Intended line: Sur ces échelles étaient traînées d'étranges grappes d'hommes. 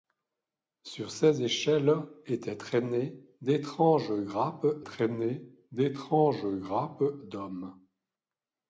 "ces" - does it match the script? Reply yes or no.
yes